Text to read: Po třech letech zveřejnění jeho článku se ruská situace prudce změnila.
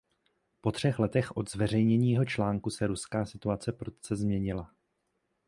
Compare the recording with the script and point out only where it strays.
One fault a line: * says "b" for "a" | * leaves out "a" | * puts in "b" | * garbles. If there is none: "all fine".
* puts in "od"